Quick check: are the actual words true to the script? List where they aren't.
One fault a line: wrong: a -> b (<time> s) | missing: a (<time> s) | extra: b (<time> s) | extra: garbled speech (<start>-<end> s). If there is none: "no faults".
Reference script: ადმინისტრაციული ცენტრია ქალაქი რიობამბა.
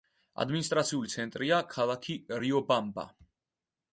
no faults